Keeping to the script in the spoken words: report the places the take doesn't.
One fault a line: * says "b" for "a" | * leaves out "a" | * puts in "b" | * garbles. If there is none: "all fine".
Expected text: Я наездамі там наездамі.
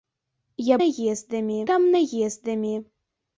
all fine